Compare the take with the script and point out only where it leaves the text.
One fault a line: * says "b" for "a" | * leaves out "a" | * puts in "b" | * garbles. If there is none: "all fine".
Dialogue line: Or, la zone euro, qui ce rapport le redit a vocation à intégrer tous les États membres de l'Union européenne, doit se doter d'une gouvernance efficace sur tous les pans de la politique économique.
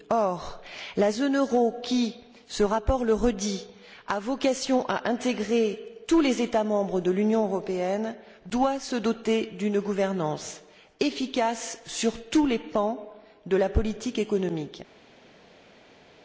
all fine